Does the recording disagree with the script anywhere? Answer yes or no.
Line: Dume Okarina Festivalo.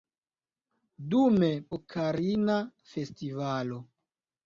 no